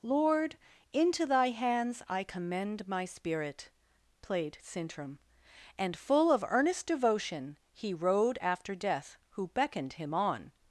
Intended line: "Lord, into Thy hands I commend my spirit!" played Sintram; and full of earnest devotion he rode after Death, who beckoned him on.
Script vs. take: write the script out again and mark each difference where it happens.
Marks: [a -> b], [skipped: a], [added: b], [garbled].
"Lord, into Thy hands I commend my spirit!" played Sintram; and full of earnest devotion he rode after Death, who beckoned him on.